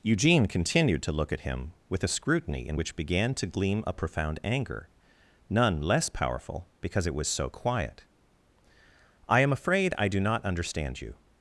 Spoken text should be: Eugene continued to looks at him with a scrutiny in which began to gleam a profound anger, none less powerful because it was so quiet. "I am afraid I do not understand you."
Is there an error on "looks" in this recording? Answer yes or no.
yes